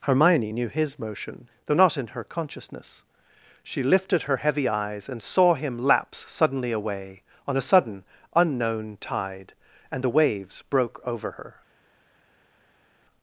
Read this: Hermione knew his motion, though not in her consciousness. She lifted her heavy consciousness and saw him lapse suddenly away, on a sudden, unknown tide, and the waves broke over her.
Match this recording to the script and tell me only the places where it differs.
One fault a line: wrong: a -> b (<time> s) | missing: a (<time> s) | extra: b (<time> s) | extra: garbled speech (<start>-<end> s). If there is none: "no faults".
wrong: consciousness -> eyes (4.7 s)